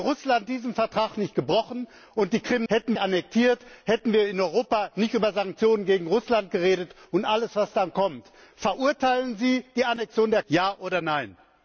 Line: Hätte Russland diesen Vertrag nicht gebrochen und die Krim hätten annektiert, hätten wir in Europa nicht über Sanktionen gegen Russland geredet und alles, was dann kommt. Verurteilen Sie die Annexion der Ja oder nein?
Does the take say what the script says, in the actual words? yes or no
yes